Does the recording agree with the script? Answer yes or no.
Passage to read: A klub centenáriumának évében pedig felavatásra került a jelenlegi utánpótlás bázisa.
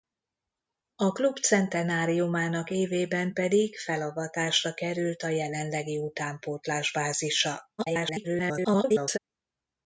no